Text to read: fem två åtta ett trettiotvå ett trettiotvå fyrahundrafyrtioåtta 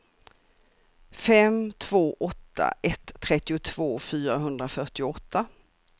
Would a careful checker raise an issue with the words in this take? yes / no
yes